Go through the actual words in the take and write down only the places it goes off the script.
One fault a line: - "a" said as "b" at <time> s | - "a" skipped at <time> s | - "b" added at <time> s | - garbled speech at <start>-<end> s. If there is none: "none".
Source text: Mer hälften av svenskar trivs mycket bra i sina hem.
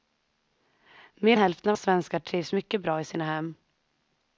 none